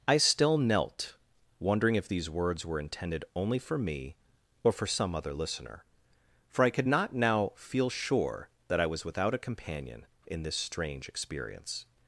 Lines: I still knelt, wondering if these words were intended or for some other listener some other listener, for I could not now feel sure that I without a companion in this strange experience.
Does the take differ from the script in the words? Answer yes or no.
yes